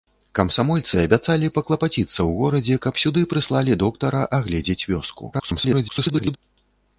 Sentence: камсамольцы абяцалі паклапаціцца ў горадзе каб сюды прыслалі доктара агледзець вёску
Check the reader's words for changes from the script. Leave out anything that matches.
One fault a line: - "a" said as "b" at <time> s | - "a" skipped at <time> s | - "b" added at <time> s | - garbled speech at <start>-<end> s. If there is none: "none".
- garbled speech at 5.3-6.4 s